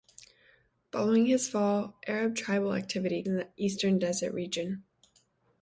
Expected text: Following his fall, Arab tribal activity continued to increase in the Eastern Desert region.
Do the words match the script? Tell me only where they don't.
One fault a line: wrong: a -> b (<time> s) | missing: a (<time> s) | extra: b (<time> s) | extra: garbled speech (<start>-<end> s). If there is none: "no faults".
missing: continued to increase (3.2 s)